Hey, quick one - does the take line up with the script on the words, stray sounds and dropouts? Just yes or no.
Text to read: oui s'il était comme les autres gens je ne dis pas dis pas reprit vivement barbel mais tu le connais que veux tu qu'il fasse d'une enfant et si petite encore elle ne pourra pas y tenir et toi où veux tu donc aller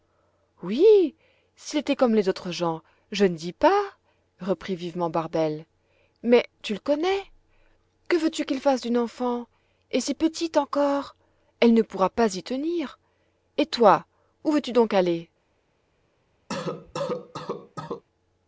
no